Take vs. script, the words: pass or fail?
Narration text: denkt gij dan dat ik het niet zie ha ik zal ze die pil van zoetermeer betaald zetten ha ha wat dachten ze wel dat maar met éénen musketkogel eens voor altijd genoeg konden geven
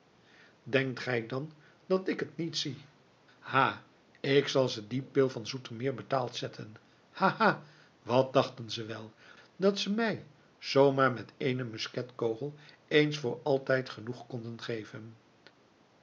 fail